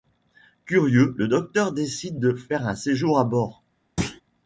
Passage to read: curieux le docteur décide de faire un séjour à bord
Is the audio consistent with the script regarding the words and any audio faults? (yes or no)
no